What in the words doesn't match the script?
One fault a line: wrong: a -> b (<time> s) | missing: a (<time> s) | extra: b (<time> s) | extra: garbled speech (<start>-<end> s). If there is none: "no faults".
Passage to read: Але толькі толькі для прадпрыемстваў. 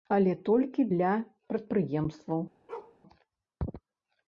missing: толькі (0.9 s)